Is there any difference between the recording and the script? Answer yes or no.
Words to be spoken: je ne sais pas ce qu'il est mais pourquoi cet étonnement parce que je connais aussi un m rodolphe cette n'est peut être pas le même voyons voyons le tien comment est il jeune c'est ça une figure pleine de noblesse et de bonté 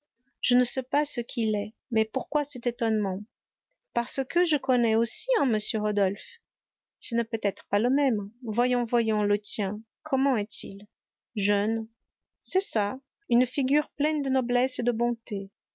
yes